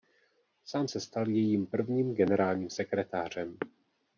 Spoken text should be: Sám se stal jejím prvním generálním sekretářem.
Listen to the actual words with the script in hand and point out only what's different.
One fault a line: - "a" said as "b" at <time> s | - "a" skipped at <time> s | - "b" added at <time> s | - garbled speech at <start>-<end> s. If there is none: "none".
none